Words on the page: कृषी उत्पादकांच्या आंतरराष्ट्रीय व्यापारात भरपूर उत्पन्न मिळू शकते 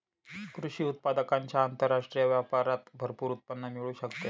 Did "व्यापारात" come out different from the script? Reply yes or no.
no